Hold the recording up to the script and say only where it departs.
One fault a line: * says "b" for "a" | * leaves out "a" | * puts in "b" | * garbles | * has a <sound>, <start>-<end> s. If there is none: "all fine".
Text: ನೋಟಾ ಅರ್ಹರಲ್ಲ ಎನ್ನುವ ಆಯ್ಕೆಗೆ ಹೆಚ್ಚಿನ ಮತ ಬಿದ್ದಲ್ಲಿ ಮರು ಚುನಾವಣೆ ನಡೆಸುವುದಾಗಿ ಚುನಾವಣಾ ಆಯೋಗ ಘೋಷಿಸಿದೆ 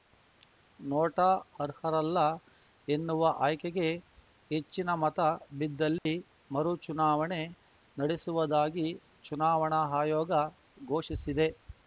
* has a dropout, 6.0-6.1 s